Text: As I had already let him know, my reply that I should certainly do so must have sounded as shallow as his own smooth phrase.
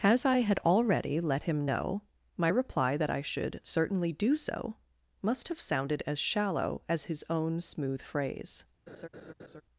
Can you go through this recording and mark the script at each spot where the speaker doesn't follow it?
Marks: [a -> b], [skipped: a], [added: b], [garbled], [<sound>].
As I had already let him know, my reply that I should certainly do so must have sounded as shallow as his own smooth phrase. [laugh]